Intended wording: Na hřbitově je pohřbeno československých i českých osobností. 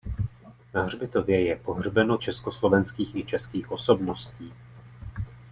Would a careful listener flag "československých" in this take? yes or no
no